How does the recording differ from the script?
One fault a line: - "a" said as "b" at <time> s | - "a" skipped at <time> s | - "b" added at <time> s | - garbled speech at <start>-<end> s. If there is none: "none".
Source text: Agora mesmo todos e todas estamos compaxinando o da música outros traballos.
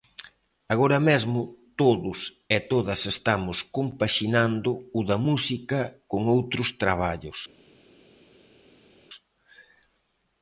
- "con" added at 6.1 s